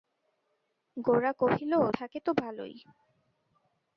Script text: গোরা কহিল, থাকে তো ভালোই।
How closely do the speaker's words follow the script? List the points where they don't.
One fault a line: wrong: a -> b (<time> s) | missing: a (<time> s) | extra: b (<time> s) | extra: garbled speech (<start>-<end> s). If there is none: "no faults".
no faults